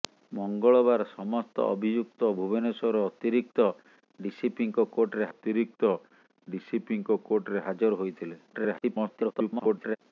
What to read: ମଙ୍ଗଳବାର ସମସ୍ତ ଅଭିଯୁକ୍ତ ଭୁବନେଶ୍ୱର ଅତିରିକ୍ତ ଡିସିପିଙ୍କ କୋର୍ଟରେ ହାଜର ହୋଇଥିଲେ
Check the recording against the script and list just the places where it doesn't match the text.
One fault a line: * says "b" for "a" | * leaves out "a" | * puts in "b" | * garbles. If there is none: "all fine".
* puts in "ଅତିରିକ୍ତ ଡିସିପିଙ୍କ କୋର୍ଟରେ"
* garbles